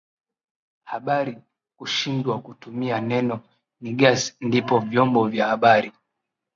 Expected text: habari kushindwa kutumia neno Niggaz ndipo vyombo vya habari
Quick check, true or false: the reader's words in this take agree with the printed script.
true